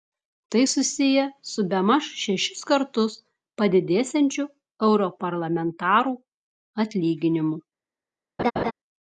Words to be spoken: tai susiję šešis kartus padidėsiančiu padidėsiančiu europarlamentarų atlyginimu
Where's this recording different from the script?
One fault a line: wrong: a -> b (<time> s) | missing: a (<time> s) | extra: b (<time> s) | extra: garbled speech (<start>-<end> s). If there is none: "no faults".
extra: su bemaž (1.5 s)
missing: padidėsiančiu (4.5 s)